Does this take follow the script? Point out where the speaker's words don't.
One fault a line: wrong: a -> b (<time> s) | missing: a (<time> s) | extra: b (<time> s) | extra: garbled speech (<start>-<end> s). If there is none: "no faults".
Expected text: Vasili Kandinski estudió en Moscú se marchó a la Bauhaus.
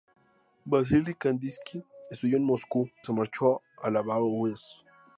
no faults